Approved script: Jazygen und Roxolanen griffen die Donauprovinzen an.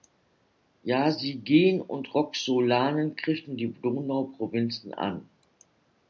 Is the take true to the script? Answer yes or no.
yes